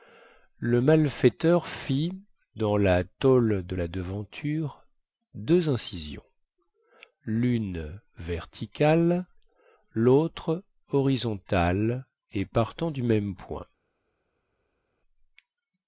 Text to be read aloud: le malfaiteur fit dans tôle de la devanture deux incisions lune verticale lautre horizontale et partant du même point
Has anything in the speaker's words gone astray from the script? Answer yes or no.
yes